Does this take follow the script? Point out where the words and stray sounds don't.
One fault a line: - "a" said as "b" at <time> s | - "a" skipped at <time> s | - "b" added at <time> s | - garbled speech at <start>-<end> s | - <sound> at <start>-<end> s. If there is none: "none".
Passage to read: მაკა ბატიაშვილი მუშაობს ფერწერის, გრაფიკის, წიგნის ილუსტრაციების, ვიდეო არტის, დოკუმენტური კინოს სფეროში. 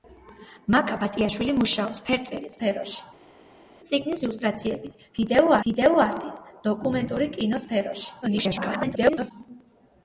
- "გრაფიკის" said as "სფეროში" at 2.6 s
- "ვიდეო" added at 5.7 s
- garbled speech at 8.2-9.3 s